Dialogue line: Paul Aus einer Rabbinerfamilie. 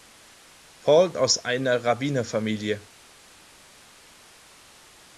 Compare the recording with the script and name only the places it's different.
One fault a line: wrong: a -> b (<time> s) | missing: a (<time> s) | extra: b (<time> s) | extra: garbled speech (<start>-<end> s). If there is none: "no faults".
no faults